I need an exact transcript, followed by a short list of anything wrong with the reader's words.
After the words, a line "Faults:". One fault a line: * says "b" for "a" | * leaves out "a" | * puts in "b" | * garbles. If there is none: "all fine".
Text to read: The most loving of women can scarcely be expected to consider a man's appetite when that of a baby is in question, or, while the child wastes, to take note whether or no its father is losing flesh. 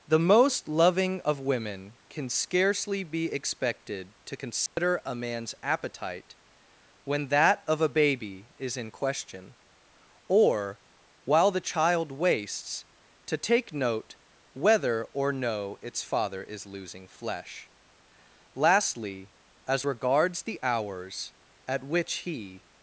The most loving of women can scarcely be expected to consider a man's appetite when that of a baby is in question, or, while the child wastes, to take note whether or no its father is losing flesh. Lastly, as regards the hours at which he
Faults:
* puts in "Lastly as regards the hours at which he"